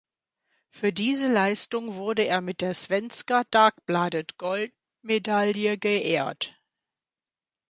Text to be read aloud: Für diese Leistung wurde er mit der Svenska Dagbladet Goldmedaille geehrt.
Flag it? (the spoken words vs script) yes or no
no